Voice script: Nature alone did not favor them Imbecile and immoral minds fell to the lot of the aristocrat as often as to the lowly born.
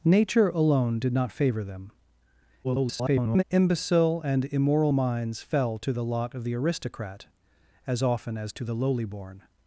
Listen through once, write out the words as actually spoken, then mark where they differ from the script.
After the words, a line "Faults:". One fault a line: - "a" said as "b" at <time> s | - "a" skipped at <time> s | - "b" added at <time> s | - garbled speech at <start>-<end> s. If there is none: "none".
Nature alone did not favor them [garbled] Imbecile and immoral minds fell to the lot of the aristocrat as often as to the lowly born.
Faults:
- garbled speech at 2.6-3.4 s